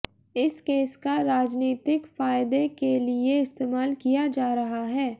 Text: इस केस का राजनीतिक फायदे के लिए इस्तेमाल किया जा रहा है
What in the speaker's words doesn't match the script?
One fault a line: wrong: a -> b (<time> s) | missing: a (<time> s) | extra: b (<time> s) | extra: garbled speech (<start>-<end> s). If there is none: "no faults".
no faults